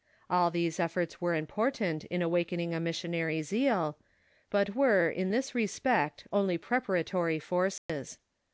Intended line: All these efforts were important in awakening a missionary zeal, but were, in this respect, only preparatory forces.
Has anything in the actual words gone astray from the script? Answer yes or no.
no